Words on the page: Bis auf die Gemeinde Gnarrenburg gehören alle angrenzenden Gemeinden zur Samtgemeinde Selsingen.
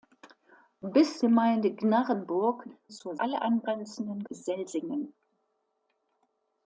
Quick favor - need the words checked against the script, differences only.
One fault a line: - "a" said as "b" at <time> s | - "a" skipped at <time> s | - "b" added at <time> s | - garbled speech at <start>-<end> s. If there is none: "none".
- "auf die" skipped at 1.2 s
- "gehören" said as "zur" at 2.9 s
- "Gemeinden zur Samtgemeinde" skipped at 4.2 s